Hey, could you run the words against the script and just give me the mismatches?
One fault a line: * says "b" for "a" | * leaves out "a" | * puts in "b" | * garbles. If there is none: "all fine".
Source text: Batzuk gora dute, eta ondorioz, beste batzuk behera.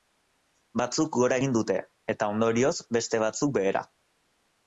* puts in "egin"